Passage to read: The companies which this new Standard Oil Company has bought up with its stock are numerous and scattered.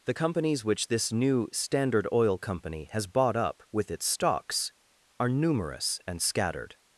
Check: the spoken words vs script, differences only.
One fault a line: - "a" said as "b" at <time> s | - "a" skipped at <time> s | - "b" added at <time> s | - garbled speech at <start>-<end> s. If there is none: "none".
- "stock" said as "stocks" at 4.1 s